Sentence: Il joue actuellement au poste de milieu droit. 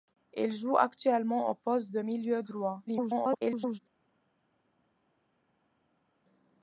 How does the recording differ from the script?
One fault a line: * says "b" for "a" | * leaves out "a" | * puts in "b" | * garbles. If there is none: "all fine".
* garbles